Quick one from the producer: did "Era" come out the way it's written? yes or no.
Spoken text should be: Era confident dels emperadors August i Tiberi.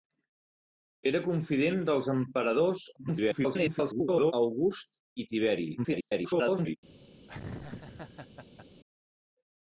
yes